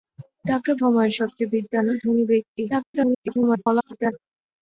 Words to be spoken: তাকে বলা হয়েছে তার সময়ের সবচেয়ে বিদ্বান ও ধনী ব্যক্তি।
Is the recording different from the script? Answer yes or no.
yes